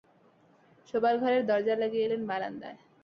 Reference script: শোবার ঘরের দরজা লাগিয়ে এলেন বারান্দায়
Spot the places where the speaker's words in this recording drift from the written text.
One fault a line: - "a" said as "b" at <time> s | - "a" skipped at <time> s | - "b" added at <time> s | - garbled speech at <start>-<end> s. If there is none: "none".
none